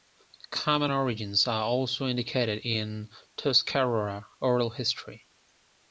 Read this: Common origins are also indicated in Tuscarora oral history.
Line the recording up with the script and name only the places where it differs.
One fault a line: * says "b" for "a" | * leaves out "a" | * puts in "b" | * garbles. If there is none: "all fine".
all fine